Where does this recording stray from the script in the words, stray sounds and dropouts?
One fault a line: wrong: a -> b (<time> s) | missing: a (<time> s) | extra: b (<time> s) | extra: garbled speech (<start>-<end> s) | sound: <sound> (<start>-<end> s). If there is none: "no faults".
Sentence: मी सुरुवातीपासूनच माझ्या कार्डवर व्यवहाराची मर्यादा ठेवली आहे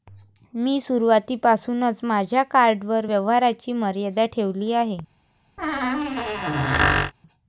sound: squeak (5.6-7.1 s)